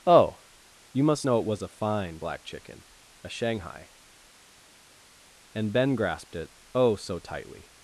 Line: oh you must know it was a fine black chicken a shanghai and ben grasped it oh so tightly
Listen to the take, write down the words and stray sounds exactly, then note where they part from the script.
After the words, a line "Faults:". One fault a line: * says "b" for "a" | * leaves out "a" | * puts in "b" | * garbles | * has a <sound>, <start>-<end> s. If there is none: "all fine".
oh you must know it was a fine black chicken a shanghai and ben grasped it oh so tightly
Faults:
all fine